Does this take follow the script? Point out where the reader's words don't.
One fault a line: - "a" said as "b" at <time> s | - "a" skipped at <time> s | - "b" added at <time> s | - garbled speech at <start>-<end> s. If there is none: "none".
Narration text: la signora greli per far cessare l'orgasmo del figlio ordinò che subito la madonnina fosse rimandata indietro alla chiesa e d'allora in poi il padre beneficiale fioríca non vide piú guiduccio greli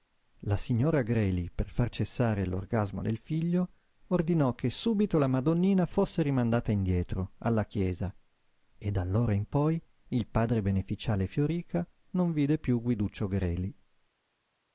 none